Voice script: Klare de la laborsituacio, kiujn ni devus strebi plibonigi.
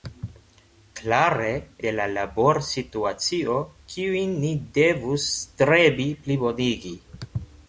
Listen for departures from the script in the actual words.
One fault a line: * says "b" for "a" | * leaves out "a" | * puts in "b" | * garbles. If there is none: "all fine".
all fine